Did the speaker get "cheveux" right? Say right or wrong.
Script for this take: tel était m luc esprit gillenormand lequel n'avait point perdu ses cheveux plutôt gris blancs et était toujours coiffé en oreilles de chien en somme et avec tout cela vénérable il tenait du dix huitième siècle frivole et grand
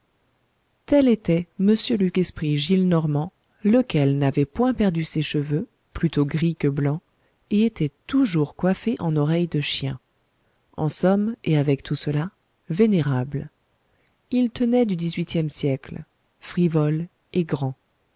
right